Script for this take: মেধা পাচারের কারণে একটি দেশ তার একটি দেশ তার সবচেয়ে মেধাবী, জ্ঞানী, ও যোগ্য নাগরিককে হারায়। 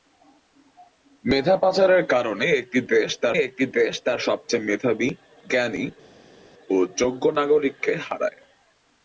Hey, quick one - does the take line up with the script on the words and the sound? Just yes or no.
yes